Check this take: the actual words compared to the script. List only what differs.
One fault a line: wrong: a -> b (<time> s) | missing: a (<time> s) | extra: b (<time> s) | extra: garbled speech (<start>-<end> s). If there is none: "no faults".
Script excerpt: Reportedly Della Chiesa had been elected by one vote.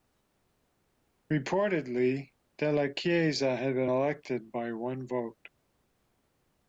no faults